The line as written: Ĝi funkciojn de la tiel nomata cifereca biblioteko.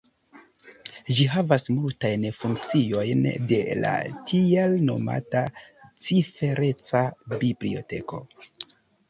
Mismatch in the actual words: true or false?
true